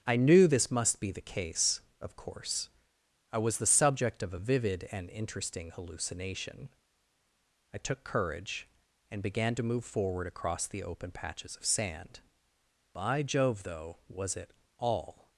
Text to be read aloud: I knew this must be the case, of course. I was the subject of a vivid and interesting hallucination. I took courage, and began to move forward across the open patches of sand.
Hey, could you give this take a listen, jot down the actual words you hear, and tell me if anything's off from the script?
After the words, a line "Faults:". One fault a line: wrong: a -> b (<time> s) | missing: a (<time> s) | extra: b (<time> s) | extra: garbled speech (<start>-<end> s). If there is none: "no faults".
I knew this must be the case, of course. I was the subject of a vivid and interesting hallucination. I took courage, and began to move forward across the open patches of sand. By Jove, though, was it all
Faults:
extra: By Jove though was it all (12.9 s)